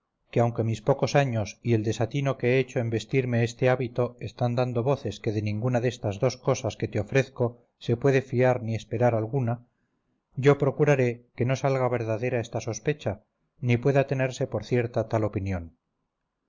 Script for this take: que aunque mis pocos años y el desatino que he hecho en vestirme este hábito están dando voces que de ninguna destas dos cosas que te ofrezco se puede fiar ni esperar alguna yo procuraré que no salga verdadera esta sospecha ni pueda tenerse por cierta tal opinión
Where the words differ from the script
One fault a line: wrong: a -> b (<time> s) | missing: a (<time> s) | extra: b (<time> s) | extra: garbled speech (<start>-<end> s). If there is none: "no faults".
no faults